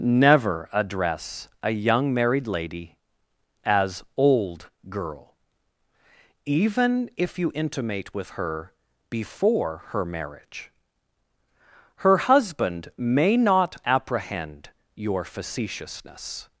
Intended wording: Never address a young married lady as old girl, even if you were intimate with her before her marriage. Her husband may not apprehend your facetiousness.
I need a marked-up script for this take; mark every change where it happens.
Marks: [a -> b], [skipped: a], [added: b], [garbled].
Never address a young married lady as old girl, even if you [skipped: were] intimate with her before her marriage. Her husband may not apprehend your facetiousness.